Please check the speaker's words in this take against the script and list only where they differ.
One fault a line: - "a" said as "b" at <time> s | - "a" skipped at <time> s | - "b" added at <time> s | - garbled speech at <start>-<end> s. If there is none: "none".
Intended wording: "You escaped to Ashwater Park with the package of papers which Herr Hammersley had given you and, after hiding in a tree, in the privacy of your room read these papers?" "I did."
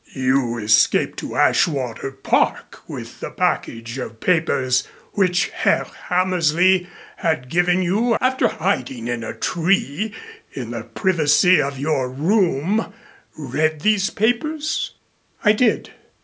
- "and" skipped at 8.2 s